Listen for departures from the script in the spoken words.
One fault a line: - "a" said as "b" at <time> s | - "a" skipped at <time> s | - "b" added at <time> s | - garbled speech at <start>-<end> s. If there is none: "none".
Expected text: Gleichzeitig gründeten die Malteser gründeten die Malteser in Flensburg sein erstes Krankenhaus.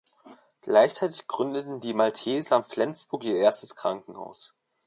- "gründeten die Malteser" skipped at 2.6 s
- "sein" said as "ihr" at 3.3 s